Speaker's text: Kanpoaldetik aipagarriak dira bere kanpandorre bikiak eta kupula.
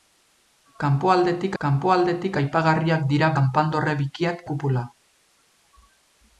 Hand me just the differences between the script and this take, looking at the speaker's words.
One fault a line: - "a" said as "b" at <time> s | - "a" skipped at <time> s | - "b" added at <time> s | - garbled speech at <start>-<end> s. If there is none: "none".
- "kanpoaldetik" added at 1.6 s
- "bere" skipped at 3.3 s
- "eta" skipped at 4.5 s